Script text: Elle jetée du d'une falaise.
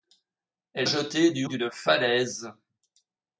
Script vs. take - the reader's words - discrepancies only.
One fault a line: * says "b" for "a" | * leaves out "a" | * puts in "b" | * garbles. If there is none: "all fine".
all fine